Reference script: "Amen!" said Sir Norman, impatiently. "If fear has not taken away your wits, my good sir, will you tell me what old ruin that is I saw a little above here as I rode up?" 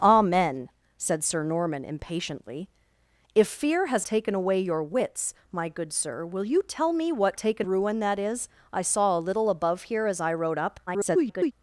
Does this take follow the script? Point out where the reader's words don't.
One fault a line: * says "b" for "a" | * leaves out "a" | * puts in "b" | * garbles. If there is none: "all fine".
* leaves out "not"
* says "taken" for "old"
* garbles